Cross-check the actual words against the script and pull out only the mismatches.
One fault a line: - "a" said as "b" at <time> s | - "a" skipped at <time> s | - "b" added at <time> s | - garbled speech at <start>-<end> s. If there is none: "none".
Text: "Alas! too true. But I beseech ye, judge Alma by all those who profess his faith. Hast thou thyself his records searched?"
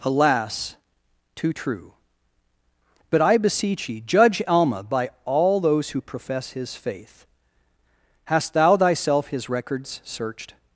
none